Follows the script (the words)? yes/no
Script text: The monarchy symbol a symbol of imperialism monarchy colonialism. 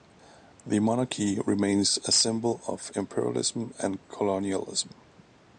no